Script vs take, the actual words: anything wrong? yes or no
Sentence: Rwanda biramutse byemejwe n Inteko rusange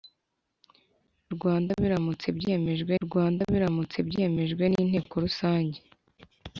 yes